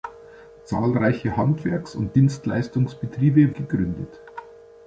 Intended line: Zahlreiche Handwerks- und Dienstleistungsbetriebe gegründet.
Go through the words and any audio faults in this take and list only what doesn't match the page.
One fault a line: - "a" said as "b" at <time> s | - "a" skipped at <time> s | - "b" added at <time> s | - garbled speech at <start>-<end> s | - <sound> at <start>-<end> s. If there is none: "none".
none